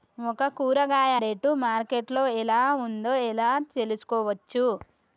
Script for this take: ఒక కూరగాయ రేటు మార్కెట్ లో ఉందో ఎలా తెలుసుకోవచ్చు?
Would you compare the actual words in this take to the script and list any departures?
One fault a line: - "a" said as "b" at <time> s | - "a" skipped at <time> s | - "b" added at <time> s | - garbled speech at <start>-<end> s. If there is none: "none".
- "ఎలా" added at 2.4 s